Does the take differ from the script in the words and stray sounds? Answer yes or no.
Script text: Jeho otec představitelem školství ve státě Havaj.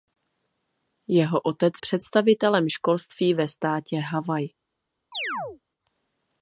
yes